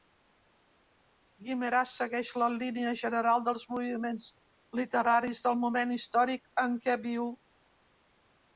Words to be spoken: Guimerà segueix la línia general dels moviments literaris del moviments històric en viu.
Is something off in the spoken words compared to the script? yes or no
yes